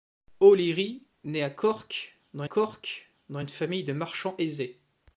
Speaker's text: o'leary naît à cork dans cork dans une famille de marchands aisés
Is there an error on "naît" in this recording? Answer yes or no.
no